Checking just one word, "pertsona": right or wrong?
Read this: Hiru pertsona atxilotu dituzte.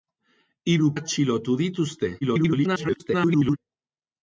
wrong